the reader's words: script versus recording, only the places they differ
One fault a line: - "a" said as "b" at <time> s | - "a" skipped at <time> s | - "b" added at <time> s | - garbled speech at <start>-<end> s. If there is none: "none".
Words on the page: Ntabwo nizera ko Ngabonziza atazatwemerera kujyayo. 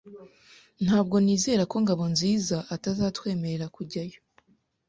none